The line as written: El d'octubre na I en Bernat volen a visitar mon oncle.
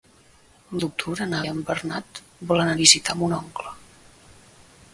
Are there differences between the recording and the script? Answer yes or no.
no